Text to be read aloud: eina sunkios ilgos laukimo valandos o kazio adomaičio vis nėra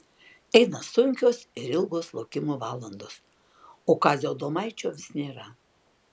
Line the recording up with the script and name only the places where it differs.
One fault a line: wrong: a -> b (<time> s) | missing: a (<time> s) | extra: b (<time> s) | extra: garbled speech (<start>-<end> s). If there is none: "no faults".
extra: ir (1.6 s)